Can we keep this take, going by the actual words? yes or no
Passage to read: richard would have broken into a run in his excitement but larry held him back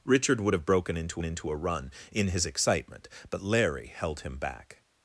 no